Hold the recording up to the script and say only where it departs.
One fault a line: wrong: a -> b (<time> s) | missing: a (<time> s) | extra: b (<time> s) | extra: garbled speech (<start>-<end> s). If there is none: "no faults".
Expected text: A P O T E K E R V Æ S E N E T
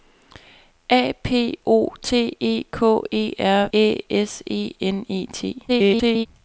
missing: V (3.7 s)
extra: garbled speech (5.7-6.3 s)